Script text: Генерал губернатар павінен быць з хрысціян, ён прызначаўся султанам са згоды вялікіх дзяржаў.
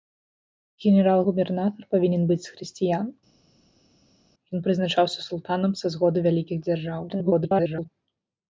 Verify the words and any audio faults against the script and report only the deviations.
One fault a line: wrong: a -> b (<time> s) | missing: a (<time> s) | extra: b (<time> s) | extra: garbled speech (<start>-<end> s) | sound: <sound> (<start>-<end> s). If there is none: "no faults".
extra: garbled speech (7.1-7.9 s)